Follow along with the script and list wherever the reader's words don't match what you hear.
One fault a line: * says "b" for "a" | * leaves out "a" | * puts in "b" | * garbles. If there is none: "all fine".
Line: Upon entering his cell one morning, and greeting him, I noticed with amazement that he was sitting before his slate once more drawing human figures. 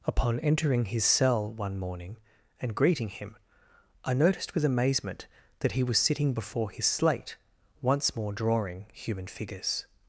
all fine